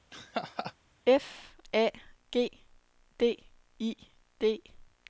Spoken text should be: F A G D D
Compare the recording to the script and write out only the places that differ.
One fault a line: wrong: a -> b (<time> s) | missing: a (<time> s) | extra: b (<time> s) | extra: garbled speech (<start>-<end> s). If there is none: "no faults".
extra: I (3.8 s)